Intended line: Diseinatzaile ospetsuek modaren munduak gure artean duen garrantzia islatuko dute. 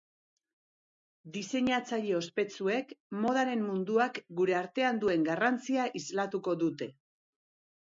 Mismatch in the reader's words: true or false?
false